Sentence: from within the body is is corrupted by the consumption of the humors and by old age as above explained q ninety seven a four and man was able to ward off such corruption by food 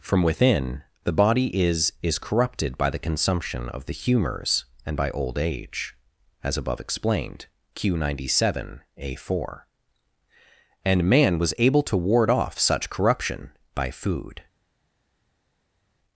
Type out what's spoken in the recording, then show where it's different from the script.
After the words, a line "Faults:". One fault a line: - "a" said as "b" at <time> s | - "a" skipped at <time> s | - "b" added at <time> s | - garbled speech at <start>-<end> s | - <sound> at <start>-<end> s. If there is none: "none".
from within the body is is corrupted by the consumption of the humors and by old age as above explained q ninety seven a four and man was able to ward off such corruption by food
Faults:
none